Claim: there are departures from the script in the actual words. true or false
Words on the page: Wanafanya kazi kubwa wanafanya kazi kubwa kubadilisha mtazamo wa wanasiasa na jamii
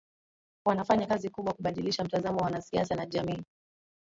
true